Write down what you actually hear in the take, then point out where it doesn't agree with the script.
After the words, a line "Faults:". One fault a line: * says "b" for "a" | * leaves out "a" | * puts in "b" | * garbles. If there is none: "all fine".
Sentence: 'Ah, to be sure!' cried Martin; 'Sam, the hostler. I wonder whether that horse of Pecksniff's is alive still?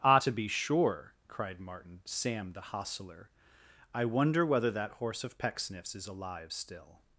'Ah, to be sure!' cried Martin; 'Sam, the hostler. I wonder whether that horse of Pecksniff's is alive still?
Faults:
all fine